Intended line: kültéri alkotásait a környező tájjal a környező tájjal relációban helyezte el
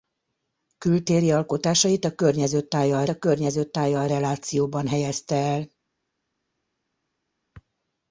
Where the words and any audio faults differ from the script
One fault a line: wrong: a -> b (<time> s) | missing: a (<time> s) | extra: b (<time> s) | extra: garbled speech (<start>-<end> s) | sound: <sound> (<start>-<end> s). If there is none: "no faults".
no faults